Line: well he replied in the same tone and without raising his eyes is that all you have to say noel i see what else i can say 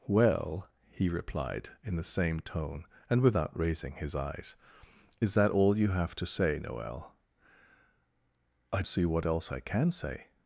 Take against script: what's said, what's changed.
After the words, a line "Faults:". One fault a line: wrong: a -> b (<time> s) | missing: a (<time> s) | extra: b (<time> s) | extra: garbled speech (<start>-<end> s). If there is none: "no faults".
well he replied in the same tone and without raising his eyes is that all you have to say noel i see what else i can say
Faults:
no faults